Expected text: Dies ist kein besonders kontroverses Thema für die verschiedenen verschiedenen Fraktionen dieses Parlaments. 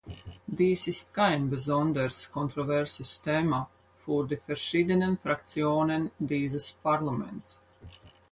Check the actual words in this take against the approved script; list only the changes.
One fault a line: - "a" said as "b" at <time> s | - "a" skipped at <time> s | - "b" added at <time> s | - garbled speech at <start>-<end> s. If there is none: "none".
- "verschiedenen" skipped at 5.2 s